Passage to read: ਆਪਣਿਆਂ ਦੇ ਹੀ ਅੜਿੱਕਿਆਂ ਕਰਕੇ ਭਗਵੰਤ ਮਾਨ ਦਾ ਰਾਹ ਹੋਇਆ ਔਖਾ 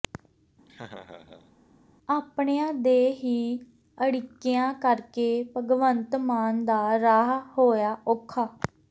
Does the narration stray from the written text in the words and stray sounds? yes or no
yes